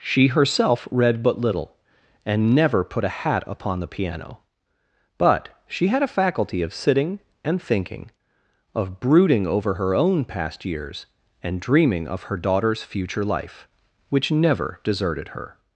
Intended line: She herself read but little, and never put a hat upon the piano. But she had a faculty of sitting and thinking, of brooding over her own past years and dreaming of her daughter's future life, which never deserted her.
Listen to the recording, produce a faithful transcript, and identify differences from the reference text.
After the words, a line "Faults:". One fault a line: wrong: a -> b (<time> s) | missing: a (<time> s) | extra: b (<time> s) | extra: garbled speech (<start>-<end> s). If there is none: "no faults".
She herself read but little, and never put a hat upon the piano. But she had a faculty of sitting and thinking, of brooding over her own past years and dreaming of her daughter's future life, which never deserted her.
Faults:
no faults